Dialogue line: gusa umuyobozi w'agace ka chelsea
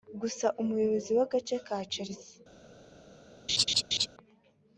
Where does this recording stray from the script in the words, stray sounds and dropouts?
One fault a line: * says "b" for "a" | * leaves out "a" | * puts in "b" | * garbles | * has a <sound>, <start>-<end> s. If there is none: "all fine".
* has a laugh, 3.5-4.1 s